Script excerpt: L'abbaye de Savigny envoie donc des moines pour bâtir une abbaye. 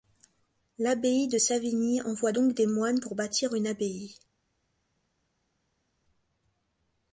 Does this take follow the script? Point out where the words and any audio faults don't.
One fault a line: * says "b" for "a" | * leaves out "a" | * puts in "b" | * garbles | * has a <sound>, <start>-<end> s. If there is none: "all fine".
all fine